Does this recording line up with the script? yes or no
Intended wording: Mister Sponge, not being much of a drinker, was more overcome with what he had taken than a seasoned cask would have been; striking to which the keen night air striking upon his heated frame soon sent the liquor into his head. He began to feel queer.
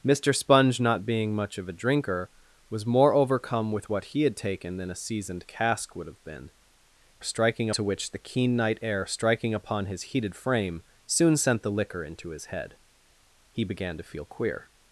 yes